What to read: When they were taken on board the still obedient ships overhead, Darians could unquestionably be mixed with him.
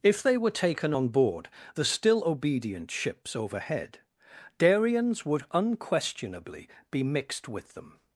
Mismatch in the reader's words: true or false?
true